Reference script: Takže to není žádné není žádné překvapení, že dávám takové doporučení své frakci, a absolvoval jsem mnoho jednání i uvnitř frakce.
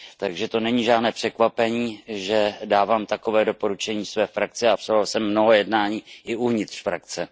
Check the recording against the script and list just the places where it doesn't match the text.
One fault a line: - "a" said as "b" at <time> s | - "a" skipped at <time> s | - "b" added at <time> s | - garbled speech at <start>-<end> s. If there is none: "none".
- "není žádné" skipped at 1.1 s